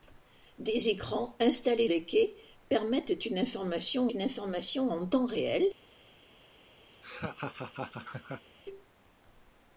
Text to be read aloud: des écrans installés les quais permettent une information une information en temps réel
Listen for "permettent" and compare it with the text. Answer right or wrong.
right